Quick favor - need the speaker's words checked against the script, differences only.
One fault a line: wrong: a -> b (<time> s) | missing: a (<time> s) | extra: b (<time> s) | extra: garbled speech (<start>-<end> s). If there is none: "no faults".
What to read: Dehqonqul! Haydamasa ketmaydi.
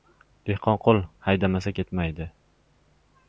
no faults